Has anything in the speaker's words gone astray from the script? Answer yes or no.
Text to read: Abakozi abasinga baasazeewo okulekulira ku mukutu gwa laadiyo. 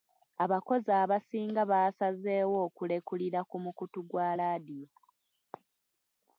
no